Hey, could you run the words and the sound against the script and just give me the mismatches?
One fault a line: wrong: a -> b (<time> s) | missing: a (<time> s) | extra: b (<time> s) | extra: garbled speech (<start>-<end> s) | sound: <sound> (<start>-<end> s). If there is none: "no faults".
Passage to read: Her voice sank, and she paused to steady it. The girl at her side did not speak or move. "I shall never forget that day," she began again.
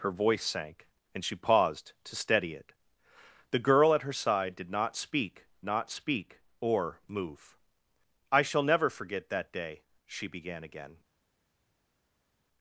extra: not speak (5.7 s)